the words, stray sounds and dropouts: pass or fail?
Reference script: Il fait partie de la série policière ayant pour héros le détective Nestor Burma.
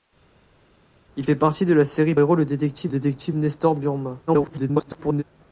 fail